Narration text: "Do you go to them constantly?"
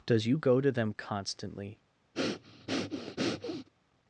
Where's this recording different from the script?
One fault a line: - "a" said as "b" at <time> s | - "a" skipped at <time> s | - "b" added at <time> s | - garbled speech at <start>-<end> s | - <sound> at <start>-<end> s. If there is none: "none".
- "Do" said as "Does" at 0.1 s
- breath at 2.1-3.7 s